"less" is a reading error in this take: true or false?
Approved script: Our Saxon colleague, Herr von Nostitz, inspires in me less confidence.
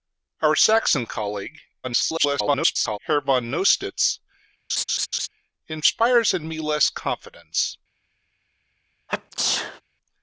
false